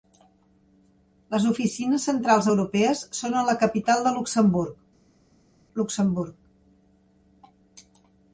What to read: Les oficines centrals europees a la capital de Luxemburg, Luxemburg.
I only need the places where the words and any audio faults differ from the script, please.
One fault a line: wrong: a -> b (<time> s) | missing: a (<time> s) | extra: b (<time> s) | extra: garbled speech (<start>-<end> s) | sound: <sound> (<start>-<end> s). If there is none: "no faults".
extra: són (3.2 s)